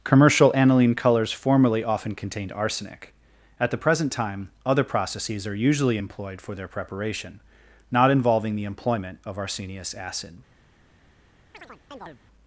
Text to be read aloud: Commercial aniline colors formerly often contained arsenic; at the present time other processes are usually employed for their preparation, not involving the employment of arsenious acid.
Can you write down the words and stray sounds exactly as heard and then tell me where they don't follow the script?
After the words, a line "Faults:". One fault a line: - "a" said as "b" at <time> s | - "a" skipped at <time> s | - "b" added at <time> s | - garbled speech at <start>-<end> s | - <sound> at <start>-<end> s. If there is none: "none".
Commercial aniline colors formerly often contained arsenic; at the present time other processes are usually employed for their preparation, not involving the employment of arsenious acid.
Faults:
- chirp at 11.5-12.2 s